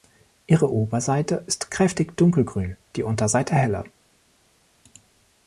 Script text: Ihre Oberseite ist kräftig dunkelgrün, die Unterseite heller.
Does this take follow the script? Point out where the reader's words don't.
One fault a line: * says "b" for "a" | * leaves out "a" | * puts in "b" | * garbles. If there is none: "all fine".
all fine